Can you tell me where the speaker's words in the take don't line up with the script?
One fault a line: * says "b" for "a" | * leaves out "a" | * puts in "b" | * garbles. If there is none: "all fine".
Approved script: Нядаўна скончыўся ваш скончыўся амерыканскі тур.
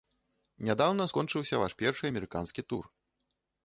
* says "першы" for "скончыўся"